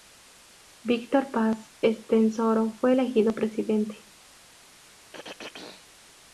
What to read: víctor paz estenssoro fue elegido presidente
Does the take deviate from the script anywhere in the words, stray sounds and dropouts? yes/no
yes